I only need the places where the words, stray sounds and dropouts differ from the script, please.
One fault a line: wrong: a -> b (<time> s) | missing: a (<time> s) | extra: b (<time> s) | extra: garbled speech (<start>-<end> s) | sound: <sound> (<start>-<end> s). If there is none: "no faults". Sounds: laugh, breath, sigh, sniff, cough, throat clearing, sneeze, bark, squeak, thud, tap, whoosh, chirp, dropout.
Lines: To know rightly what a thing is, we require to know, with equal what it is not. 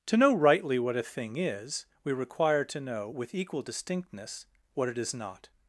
extra: distinctness (3.6 s)